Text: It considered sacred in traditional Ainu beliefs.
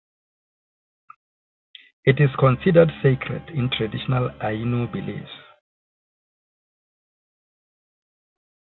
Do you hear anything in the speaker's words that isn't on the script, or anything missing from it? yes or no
yes